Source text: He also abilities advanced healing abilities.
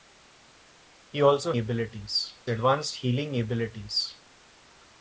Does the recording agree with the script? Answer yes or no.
yes